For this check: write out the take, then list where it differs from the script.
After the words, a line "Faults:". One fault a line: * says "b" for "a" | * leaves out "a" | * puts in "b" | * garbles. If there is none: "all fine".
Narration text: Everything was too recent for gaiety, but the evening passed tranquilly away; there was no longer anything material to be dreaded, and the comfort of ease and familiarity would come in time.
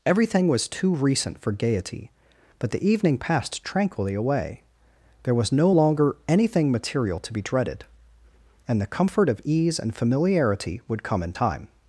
Everything was too recent for gaiety, but the evening passed tranquilly away; there was no longer anything material to be dreaded, and the comfort of ease and familiarity would come in time.
Faults:
all fine